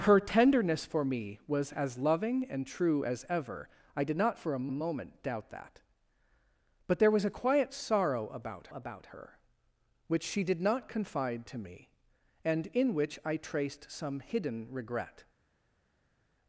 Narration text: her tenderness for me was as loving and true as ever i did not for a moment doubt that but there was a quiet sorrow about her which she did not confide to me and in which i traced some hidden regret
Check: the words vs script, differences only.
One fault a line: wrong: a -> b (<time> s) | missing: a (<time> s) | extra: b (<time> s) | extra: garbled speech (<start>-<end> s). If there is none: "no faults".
extra: a (4.7 s)
extra: about (8.7 s)